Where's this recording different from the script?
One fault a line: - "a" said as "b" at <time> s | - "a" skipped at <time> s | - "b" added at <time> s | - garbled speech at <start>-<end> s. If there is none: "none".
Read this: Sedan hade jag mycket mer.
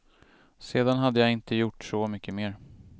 - "inte gjort så" added at 1.3 s